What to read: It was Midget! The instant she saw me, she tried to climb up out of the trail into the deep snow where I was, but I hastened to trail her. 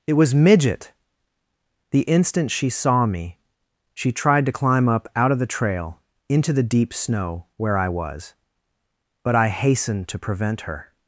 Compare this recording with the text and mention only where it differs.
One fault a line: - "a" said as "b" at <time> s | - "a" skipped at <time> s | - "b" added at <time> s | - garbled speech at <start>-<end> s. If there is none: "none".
- "trail" said as "prevent" at 10.2 s